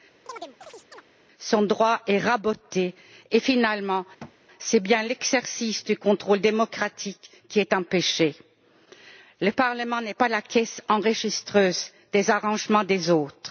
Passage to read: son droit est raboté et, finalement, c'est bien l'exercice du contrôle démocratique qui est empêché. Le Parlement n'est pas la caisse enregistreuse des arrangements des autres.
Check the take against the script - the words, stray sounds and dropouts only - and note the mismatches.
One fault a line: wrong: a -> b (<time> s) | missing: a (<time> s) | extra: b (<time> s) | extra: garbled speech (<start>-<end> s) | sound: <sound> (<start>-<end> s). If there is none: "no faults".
sound: chirp (0.3-1.0 s)
sound: thud (4.2-4.4 s)